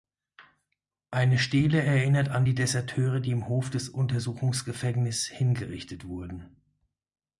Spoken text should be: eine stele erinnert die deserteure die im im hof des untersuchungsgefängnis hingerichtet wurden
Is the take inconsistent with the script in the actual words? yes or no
yes